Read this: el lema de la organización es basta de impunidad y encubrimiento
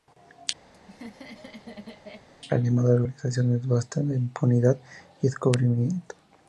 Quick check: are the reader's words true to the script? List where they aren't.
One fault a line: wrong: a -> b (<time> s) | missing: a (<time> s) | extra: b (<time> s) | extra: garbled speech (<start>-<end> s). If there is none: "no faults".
no faults